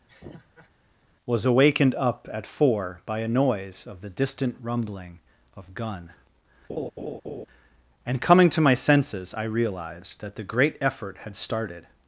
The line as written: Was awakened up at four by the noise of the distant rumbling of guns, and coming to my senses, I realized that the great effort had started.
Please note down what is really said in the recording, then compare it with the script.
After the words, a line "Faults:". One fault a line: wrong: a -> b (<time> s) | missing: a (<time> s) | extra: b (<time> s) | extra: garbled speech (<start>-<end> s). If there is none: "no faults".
Was awakened up at four by a noise of the distant rumbling of gun, and coming to my senses, I realized that the great effort had started.
Faults:
wrong: the -> a (3.2 s)
wrong: guns -> gun (5.7 s)